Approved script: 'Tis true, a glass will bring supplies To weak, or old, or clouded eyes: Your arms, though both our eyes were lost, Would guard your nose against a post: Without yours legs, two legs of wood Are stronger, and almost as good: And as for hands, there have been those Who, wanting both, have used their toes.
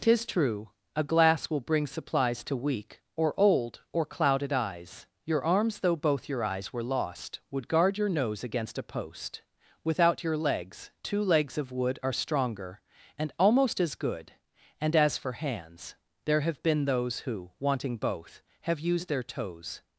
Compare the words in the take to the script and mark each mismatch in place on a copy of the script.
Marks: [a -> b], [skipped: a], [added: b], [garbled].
'Tis true, a glass will bring supplies To weak, or old, or clouded eyes: Your arms, though both [our -> your] eyes were lost, Would guard your nose against a post: Without [yours -> your] legs, two legs of wood Are stronger, and almost as good: And as for hands, there have been those Who, wanting both, have used their toes.